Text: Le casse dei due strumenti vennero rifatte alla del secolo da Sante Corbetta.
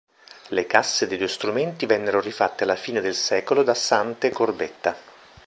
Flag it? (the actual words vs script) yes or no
yes